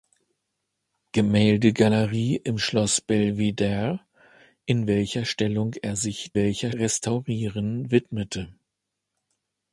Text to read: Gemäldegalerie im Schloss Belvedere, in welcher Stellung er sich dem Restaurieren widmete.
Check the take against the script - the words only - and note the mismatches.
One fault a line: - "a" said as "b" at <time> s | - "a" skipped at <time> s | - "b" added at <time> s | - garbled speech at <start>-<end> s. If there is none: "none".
- "dem" said as "welcher" at 6.3 s